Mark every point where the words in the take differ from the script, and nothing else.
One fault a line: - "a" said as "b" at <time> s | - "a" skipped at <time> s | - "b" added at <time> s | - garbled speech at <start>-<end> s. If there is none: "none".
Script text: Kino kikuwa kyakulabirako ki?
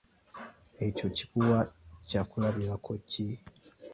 - "Kino" said as "Ekyo" at 0.8 s